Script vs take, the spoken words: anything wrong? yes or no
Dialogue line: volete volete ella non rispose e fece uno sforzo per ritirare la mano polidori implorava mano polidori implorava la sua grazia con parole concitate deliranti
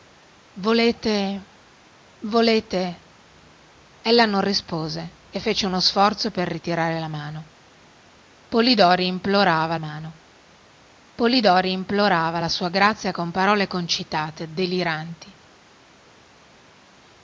no